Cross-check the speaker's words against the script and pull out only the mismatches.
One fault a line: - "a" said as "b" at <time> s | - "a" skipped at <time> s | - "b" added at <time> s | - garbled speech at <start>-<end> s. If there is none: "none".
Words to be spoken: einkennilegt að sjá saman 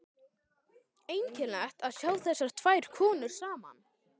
- "þessar tvær konur" added at 2.3 s